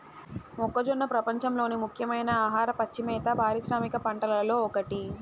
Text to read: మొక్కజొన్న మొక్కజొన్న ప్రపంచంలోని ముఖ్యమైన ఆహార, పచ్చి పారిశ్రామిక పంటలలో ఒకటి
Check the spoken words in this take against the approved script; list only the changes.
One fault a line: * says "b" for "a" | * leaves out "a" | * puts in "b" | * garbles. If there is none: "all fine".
* leaves out "మొక్కజొన్న"
* puts in "మేత"